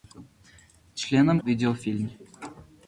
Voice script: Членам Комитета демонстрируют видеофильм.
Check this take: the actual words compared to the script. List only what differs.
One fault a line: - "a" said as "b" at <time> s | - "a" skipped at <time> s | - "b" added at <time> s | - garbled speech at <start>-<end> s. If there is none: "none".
- "Комитета демонстрируют" skipped at 1.4 s